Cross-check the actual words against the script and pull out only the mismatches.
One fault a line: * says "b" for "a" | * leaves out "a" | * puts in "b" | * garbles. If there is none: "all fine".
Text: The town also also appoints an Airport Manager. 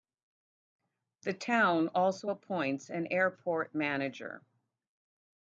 * leaves out "also"